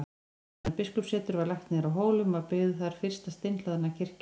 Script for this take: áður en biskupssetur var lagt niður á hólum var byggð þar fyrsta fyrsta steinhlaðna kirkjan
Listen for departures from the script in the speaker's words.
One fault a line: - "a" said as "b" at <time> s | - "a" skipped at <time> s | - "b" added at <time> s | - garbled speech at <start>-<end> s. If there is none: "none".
- "fyrsta" skipped at 3.3 s